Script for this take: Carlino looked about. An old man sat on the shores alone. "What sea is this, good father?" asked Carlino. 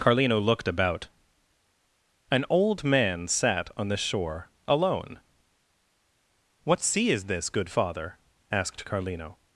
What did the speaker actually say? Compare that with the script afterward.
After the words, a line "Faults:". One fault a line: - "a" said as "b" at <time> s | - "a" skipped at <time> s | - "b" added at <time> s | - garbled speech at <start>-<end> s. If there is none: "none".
Carlino looked about. An old man sat on the shore alone. "What sea is this, good father?" asked Carlino.
Faults:
- "shores" said as "shore" at 4.0 s